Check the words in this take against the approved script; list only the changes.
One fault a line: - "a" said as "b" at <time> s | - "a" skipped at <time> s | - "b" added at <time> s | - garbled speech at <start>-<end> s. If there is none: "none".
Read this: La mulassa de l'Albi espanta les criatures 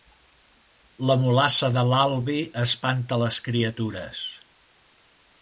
none